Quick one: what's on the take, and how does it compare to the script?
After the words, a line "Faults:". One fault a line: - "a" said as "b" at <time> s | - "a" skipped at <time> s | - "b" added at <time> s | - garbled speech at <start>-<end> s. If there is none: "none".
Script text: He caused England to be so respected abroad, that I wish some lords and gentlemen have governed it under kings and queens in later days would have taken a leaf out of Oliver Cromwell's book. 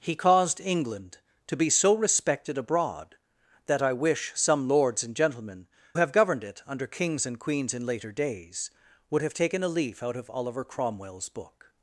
He caused England to be so respected abroad, that I wish some lords and gentlemen have governed it under kings and queens in later days would have taken a leaf out of Oliver Cromwell's book.
Faults:
none